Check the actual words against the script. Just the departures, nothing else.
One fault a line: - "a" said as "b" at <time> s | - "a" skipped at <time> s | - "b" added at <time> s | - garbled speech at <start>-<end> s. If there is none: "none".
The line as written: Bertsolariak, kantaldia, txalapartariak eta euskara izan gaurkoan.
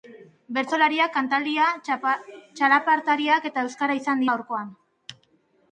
none